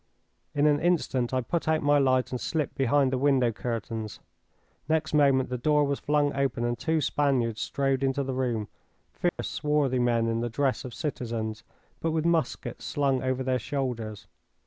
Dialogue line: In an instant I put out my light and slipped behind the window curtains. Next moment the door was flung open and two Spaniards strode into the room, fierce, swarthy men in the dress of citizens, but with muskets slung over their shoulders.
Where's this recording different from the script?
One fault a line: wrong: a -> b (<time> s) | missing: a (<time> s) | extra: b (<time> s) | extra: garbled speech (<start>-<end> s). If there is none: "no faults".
no faults